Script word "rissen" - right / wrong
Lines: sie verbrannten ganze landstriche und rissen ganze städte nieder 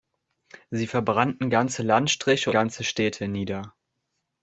wrong